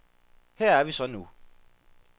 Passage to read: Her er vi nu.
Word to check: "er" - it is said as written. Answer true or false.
true